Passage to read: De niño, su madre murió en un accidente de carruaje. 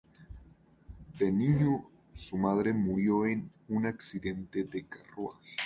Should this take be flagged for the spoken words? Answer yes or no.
no